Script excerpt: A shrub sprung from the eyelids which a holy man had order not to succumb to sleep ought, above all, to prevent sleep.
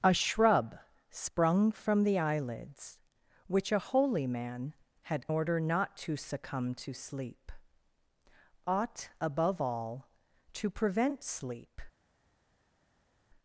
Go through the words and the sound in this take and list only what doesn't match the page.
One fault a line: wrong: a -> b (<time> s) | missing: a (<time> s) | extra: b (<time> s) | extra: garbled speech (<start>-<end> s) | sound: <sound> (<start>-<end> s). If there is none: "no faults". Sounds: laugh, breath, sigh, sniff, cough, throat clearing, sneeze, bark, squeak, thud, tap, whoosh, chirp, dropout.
no faults